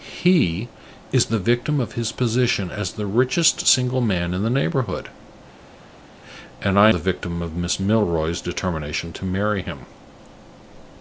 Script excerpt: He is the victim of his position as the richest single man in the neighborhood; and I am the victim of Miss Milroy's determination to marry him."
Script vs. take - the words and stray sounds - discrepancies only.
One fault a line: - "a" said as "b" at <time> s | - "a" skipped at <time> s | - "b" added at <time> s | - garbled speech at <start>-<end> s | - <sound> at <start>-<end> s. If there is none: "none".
- "am" skipped at 6.9 s